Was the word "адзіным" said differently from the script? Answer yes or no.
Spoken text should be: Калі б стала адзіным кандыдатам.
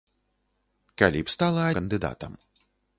yes